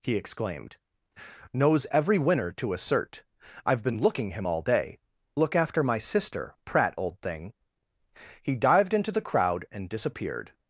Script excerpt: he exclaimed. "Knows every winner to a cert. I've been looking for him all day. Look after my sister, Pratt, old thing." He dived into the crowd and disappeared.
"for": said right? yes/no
no